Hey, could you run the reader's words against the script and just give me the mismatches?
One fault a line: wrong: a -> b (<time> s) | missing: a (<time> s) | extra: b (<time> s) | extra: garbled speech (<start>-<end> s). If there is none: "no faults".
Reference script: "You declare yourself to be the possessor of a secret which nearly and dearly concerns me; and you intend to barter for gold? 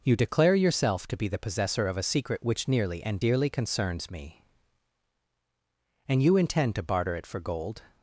extra: it (7.1 s)